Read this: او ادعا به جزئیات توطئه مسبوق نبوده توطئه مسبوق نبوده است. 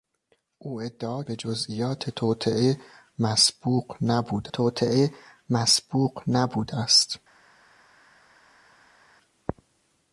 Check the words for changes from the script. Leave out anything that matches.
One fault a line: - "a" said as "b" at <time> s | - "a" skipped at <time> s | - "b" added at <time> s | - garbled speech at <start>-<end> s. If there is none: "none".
none